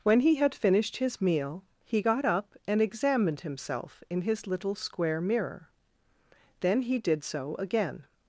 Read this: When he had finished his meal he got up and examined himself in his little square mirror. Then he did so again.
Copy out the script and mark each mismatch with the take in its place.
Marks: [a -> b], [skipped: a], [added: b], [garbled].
When he had finished his meal he got up and examined himself in his little square mirror. Then he did so again.